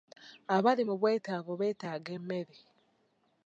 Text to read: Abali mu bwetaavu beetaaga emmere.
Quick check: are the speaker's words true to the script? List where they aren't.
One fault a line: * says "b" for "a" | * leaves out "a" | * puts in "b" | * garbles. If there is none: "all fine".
all fine